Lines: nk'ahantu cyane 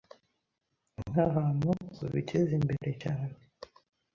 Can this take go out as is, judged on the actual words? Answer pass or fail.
fail